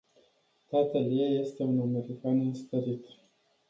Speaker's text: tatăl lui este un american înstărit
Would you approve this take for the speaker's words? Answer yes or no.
no